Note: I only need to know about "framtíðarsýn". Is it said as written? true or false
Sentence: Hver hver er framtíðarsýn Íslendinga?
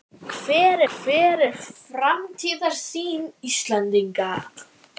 true